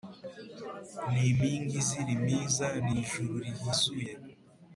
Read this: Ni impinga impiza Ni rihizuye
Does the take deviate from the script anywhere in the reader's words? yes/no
yes